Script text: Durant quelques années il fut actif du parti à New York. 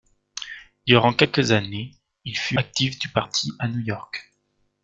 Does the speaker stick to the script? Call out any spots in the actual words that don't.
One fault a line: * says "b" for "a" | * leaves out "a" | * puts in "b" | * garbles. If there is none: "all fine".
all fine